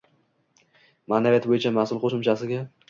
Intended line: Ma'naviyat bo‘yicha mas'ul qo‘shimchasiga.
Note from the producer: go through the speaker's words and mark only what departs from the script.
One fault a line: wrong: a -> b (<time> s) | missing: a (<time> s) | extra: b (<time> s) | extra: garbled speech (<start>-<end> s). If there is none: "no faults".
no faults